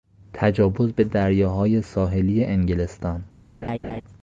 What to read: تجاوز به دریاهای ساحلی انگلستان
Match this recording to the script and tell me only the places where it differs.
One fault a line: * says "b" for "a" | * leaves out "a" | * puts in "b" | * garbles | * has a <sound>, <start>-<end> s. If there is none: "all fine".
* has a laugh, 3.6-4.0 s